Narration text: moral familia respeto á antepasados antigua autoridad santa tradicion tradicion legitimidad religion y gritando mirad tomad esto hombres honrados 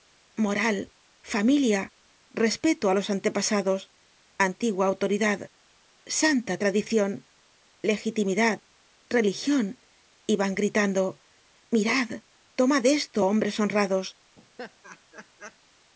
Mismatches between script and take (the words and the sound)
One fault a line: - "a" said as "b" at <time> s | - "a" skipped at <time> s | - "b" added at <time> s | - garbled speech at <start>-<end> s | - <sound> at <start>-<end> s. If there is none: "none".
- "los" added at 3.0 s
- "tradicion" skipped at 7.1 s
- "van" added at 10.4 s
- laugh at 14.4-15.6 s